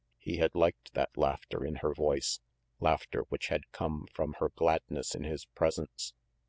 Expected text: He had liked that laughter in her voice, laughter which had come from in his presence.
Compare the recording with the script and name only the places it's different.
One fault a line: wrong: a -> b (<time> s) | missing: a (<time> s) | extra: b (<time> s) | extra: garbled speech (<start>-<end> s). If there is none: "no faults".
extra: her gladness (4.4 s)